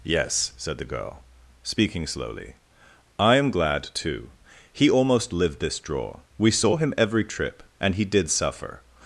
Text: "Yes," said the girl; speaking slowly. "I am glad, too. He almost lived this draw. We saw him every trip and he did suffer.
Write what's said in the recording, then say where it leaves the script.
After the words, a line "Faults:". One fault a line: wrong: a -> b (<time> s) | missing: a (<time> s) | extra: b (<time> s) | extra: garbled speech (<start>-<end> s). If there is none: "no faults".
"Yes," said the girl; speaking slowly. "I am glad, too. He almost lived this draw. We saw him every trip and he did suffer.
Faults:
no faults